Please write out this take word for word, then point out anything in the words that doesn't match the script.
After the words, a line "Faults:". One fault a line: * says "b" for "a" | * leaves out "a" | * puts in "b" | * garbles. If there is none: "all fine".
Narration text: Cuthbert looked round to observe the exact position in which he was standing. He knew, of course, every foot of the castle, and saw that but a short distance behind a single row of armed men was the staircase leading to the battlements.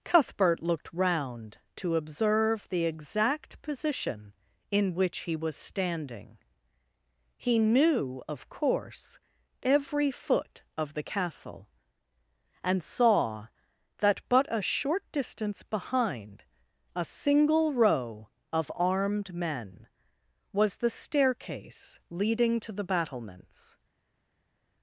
Cuthbert looked round to observe the exact position in which he was standing. He knew, of course, every foot of the castle, and saw that but a short distance behind a single row of armed men was the staircase leading to the battlements.
Faults:
all fine